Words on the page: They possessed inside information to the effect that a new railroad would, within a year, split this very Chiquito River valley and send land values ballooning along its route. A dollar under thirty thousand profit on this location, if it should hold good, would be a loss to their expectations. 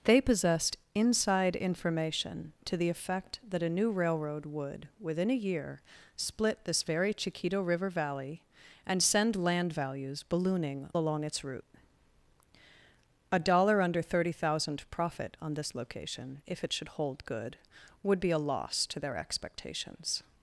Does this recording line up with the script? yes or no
yes